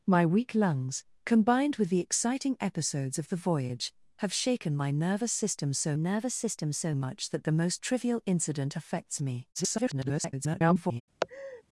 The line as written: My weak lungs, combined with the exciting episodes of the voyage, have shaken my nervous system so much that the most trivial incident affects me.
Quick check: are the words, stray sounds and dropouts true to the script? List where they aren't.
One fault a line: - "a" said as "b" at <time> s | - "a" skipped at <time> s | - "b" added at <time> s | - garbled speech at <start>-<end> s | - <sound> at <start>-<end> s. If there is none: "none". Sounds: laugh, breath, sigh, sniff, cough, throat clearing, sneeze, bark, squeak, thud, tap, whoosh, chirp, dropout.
- "nervous system so" added at 5.9 s
- garbled speech at 9.5-11.0 s
- laugh at 11.2-11.6 s